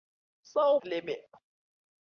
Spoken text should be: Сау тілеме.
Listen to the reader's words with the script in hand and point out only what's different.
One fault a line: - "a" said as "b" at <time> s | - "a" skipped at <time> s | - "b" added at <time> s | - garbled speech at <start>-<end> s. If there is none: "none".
none